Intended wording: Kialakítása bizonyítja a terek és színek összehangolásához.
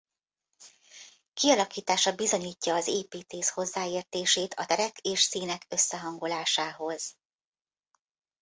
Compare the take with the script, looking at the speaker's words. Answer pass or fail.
fail